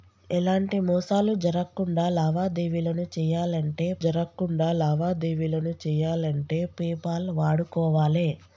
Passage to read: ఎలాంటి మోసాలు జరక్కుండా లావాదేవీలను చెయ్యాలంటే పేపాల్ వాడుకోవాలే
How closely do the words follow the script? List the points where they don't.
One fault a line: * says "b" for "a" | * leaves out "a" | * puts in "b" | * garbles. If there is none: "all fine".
* puts in "జరక్కుండా లావాదేవీలను చెయ్యాలంటే"